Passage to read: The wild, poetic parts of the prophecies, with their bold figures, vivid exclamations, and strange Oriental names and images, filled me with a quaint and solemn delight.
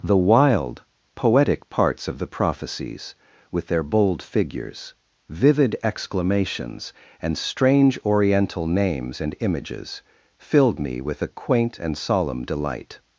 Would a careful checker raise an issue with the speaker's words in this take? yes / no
no